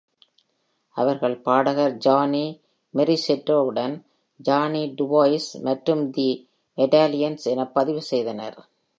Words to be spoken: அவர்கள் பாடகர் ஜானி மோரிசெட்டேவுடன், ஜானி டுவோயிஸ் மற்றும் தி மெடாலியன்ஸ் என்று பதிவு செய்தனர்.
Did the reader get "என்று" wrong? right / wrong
wrong